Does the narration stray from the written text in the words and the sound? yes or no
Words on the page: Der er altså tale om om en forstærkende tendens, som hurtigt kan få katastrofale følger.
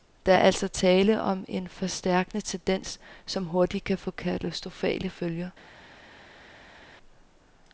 yes